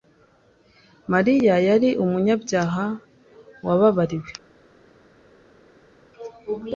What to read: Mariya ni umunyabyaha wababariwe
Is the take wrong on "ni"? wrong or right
wrong